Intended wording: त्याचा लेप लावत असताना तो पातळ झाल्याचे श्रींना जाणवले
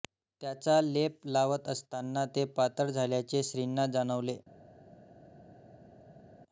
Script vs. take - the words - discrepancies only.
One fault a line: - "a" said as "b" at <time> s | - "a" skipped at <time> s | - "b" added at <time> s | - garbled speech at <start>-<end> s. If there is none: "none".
- "तो" said as "ते" at 2.4 s